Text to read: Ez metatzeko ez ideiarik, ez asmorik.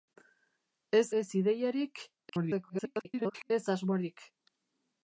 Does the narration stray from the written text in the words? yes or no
yes